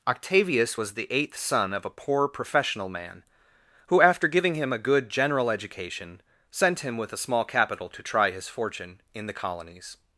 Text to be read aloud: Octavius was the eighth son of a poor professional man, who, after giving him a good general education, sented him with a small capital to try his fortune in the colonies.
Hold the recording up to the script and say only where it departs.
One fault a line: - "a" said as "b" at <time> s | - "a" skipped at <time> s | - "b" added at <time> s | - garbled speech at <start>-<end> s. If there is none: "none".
- "sented" said as "sent" at 6.5 s